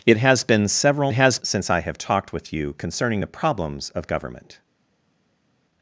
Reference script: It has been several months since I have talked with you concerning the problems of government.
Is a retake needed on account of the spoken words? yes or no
yes